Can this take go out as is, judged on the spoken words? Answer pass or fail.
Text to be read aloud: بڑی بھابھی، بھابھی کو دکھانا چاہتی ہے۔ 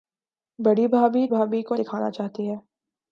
pass